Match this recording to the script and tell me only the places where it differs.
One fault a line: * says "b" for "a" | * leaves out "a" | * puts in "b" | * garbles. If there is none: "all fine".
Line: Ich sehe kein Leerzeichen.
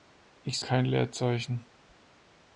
* leaves out "sehe"